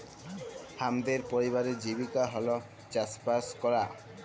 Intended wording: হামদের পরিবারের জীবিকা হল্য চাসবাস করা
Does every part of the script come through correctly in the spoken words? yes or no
yes